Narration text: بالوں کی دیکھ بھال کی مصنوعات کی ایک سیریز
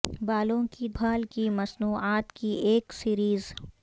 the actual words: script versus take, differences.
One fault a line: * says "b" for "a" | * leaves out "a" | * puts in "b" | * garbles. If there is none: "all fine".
* leaves out "دیکھ"